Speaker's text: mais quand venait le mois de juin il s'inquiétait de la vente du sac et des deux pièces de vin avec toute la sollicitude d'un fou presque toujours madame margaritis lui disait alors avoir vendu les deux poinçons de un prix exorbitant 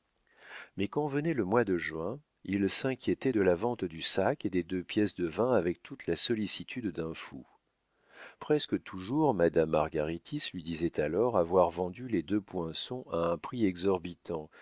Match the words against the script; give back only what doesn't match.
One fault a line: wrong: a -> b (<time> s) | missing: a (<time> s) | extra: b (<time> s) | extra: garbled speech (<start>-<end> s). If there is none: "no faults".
wrong: de -> à (13.1 s)